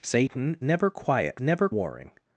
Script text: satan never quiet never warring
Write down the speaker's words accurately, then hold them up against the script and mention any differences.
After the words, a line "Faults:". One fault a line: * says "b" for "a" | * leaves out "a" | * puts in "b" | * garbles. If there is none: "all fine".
satan never quiet never warring
Faults:
all fine